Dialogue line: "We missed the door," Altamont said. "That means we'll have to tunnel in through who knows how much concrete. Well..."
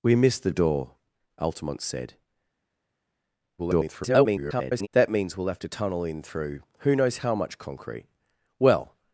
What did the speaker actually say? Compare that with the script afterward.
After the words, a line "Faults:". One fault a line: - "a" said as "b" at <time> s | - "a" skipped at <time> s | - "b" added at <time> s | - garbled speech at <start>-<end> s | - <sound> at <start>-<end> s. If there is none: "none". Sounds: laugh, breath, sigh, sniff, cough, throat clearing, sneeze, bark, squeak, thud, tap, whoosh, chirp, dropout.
"We missed the door," Altamont said. [garbled] "That means we'll have to tunnel in through who knows how much concrete. Well..."
Faults:
- garbled speech at 3.6-4.9 s